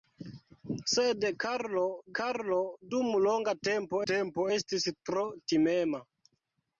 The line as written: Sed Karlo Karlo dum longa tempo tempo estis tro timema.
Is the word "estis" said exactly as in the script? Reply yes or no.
yes